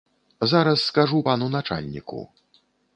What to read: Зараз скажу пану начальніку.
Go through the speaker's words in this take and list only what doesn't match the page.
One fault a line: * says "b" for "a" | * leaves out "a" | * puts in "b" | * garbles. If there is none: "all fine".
all fine